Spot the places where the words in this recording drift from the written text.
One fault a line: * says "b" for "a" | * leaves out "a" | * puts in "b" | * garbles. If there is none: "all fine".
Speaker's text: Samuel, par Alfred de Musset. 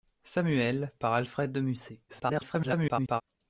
* garbles